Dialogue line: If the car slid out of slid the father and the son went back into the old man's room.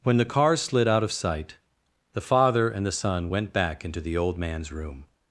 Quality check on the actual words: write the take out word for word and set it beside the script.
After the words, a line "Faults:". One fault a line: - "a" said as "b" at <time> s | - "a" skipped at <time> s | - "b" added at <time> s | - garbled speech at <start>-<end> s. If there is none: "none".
When the car slid out of sight the father and the son went back into the old man's room.
Faults:
- "If" said as "When" at 0.0 s
- "slid" said as "sight" at 1.1 s